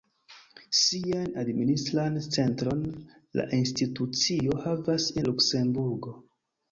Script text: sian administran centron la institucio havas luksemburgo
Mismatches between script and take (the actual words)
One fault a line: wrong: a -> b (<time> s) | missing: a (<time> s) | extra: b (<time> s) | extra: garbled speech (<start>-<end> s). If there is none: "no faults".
no faults